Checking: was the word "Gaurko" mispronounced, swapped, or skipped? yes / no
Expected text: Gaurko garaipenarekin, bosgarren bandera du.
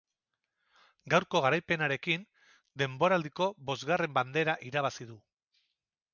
no